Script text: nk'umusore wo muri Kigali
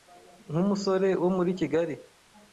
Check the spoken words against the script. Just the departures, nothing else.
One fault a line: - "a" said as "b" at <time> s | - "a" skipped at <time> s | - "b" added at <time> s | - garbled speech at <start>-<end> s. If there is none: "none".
none